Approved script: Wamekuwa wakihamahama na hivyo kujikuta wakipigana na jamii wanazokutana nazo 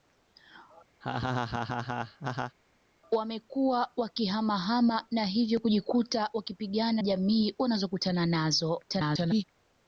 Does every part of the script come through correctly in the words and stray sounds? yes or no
no